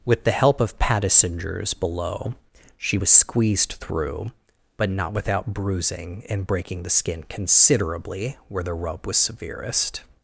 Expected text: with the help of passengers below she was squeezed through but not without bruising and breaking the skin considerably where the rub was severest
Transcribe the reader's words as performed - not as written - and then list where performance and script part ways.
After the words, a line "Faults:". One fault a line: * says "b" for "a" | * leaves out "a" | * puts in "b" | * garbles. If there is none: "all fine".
with the help of passengers below she was squeezed through but not without bruising and breaking the skin considerably where the rub was severest
Faults:
all fine